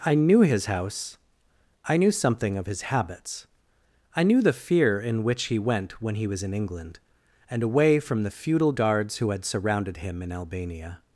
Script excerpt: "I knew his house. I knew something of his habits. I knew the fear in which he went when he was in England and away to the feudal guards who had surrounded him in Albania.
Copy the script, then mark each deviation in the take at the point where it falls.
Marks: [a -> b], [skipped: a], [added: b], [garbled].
"I knew his house. I knew something of his habits. I knew the fear in which he went when he was in England and away [to -> from] the feudal guards who had surrounded him in Albania.